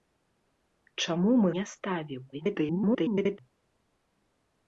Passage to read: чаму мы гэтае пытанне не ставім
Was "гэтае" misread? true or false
true